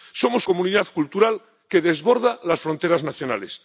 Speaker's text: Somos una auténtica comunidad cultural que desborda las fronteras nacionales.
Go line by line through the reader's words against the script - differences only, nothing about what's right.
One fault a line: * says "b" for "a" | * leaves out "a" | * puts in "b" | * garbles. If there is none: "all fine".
* leaves out "una auténtica"